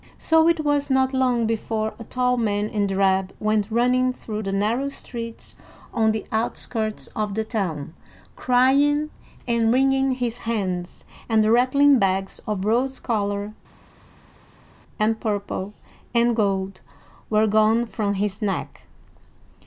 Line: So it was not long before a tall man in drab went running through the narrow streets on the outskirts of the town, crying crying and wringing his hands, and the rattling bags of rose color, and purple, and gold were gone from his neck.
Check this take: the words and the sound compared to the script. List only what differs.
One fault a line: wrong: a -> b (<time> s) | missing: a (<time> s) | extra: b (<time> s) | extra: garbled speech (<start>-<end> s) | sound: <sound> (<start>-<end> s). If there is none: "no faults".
missing: crying (9.1 s)